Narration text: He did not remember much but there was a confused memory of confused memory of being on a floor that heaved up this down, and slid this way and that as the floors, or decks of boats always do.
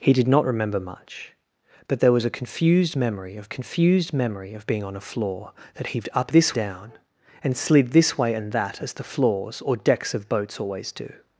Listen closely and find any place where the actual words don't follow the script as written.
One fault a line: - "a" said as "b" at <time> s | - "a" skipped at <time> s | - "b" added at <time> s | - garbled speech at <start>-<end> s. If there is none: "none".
none